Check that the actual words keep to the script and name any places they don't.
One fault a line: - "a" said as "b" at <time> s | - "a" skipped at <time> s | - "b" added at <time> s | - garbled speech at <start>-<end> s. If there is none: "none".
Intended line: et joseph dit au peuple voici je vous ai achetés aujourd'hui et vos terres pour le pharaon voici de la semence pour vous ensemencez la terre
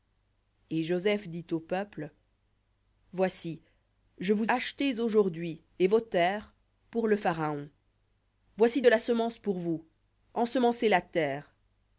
- "ai" skipped at 4.5 s